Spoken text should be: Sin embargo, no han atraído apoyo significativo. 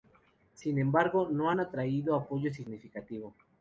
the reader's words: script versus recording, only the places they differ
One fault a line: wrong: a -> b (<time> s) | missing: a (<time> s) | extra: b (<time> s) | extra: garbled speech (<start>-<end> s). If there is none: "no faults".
no faults